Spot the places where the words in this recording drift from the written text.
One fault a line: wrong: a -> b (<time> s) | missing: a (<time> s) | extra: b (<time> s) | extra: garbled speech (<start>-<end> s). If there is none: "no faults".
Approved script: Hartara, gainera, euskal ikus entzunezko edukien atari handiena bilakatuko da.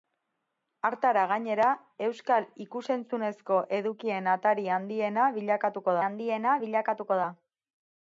extra: handiena bilakatuko (6.1 s)